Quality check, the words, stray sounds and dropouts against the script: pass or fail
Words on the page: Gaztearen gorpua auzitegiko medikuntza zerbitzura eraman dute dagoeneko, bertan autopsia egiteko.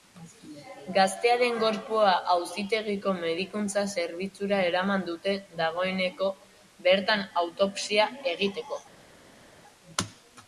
pass